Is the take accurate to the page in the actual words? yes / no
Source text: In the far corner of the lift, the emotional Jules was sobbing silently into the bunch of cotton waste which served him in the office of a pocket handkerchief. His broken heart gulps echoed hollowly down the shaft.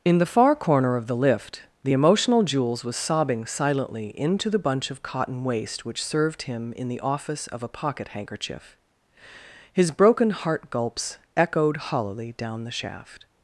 yes